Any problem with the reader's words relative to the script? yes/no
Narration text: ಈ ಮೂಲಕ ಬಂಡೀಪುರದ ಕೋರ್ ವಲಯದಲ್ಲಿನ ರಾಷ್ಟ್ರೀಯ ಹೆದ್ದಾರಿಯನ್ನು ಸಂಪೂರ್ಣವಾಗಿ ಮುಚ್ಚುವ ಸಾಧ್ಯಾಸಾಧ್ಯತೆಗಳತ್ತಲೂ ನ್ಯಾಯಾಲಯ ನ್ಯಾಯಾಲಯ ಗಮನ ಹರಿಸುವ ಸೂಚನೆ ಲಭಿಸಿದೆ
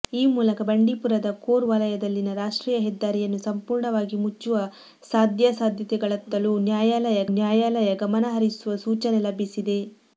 no